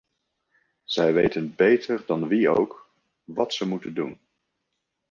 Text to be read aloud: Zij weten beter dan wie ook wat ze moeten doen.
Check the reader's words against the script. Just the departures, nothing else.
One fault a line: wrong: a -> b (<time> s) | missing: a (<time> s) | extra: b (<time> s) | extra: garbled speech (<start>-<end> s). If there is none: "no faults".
no faults